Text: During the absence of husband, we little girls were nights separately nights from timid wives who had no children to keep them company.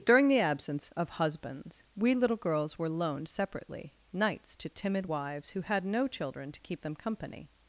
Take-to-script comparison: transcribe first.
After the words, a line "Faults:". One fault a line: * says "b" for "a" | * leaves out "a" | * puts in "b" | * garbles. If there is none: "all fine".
During the absence of husbands, we little girls were loaned separately nights to timid wives who had no children to keep them company.
Faults:
* says "husbands" for "husband"
* says "loaned" for "nights"
* says "to" for "from"